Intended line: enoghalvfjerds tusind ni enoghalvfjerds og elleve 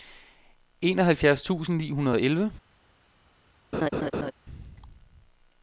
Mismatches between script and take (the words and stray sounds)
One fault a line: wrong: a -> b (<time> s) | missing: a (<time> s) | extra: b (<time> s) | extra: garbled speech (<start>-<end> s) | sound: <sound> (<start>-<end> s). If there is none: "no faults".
wrong: enoghalvfjerds -> hundrede (1.9 s)
sound: laugh (3.7-4.3 s)